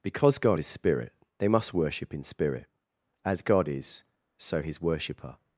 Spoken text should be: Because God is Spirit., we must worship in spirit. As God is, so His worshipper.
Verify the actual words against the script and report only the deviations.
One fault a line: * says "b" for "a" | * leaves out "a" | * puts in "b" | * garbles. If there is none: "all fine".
* says "they" for "we"